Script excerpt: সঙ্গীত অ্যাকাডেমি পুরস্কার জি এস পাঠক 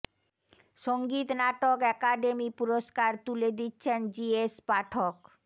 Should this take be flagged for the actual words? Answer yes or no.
yes